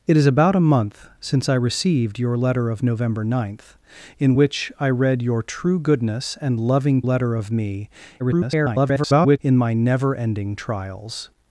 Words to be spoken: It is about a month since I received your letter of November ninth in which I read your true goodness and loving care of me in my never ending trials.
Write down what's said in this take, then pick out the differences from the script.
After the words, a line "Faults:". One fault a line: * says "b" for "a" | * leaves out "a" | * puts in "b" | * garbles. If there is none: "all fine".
It is about a month since I received your letter of November ninth in which I read your true goodness and loving letter of me [garbled] in my never ending trials.
Faults:
* says "letter" for "care"
* garbles